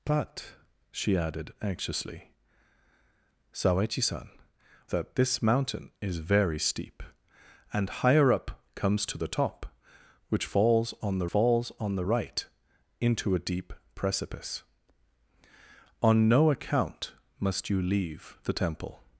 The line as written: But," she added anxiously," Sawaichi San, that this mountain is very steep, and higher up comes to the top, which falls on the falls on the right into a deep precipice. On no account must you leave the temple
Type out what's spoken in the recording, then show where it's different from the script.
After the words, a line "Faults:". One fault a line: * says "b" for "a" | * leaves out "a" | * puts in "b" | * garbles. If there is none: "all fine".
But," she added anxiously," Sawaichi San, that this mountain is very steep, and higher up comes to the top, which falls on the falls on the right into a deep precipice. On no account must you leave the temple
Faults:
all fine